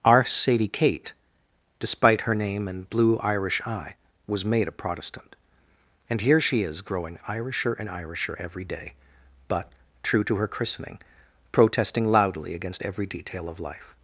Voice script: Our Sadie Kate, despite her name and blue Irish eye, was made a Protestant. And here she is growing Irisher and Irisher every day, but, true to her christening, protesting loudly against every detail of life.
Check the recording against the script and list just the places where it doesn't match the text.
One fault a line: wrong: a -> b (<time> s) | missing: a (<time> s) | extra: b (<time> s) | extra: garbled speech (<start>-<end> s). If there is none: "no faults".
no faults